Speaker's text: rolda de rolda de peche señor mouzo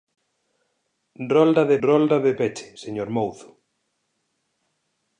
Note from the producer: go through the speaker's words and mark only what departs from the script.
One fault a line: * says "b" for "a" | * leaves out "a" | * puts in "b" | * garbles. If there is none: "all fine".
all fine